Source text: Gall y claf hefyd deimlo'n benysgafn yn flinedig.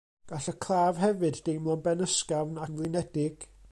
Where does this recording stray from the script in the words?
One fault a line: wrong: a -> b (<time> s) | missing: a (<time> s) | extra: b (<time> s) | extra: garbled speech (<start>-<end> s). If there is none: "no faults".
no faults